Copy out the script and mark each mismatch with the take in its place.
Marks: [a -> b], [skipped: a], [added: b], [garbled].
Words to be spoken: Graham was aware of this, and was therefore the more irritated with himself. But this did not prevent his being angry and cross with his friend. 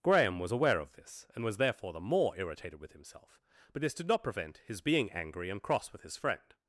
Graham was aware of this, and was therefore the more irritated with himself. But this did not prevent his being angry and cross with his friend.